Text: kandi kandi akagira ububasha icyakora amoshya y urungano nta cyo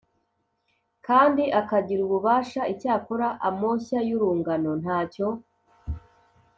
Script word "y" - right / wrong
right